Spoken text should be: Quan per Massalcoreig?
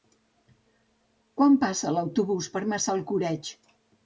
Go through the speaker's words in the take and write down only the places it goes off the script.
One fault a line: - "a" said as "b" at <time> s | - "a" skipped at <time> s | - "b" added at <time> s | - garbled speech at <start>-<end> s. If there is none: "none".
- "passa l'autobús" added at 1.6 s